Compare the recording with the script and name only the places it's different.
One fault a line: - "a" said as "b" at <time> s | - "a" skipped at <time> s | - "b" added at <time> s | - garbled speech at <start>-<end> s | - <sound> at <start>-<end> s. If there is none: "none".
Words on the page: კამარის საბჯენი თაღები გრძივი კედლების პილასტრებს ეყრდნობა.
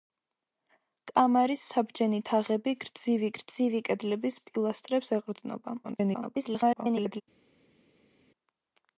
- "გრძივი" added at 3.4 s
- garbled speech at 5.8-7.2 s